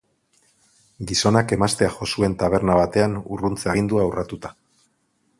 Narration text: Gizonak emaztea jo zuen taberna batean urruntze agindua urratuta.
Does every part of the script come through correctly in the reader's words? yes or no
yes